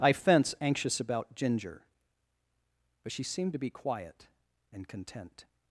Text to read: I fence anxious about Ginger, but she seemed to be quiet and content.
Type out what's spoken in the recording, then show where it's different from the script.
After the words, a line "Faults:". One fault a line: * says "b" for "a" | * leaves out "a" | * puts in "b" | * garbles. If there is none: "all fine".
I fence anxious about Ginger, but she seemed to be quiet and content.
Faults:
all fine